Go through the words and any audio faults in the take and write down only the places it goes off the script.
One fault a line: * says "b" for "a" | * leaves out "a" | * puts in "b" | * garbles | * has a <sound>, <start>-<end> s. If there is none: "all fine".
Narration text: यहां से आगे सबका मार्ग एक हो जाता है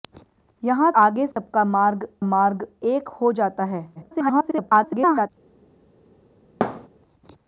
* leaves out "से"
* has a dropout, 1.3-1.4 s
* puts in "मार्ग"
* garbles
* has a thud, 6.6-6.9 s